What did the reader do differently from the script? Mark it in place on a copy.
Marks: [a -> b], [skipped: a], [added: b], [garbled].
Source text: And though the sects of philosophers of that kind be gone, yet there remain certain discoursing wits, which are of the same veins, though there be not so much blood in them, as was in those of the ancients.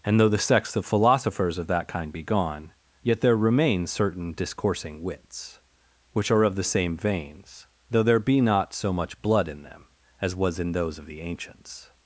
And though the sects of philosophers of that kind be gone, yet there remain certain discoursing wits, which are of the same veins, though there be not so much blood in them, as was in those of the ancients.